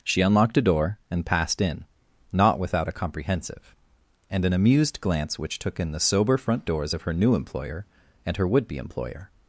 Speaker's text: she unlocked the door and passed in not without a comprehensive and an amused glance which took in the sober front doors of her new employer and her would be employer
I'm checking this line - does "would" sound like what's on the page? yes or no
yes